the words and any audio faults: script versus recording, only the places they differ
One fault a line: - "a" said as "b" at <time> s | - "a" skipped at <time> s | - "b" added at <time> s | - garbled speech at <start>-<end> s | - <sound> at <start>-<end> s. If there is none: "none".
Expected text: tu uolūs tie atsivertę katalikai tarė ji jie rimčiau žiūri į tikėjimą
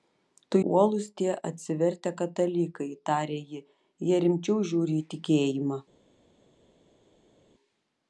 none